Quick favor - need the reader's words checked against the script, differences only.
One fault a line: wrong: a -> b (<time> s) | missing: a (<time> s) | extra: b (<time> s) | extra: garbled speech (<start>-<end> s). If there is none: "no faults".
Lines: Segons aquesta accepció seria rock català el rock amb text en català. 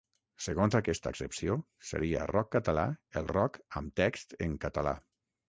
no faults